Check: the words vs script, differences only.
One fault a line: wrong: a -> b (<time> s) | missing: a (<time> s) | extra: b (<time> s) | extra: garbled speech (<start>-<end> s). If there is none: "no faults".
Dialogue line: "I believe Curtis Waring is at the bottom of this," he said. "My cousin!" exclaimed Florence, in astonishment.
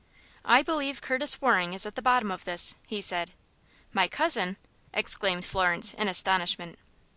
no faults